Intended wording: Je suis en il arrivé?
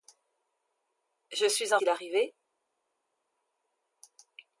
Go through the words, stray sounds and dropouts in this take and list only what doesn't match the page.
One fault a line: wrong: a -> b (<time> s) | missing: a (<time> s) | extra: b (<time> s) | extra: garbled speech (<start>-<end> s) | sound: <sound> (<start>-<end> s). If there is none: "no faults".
no faults